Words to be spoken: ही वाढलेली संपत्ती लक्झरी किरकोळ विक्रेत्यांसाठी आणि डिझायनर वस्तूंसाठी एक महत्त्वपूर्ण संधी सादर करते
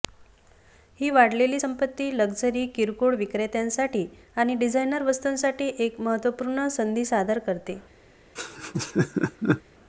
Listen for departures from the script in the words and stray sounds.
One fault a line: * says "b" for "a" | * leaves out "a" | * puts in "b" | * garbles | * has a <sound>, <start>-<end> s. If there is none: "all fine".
* has a laugh, 8.4-9.6 s